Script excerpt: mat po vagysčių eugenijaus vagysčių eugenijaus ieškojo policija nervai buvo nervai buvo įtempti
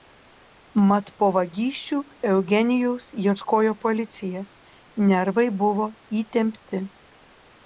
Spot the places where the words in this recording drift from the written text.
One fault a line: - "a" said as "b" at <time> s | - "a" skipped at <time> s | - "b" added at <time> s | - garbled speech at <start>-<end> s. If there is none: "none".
- "vagysčių eugenijaus" skipped at 3.1 s
- "nervai buvo" skipped at 5.9 s